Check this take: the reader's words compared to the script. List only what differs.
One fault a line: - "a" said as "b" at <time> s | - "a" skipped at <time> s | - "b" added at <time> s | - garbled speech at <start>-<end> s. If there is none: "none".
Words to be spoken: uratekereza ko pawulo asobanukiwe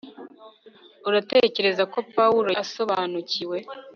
none